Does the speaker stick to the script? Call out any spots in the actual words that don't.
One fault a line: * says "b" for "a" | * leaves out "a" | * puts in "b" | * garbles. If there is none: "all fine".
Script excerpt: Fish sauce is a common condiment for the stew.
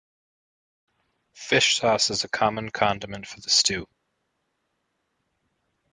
all fine